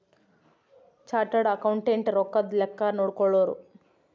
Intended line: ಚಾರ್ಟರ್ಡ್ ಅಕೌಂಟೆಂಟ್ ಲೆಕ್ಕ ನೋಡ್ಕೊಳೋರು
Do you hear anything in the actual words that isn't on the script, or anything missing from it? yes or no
yes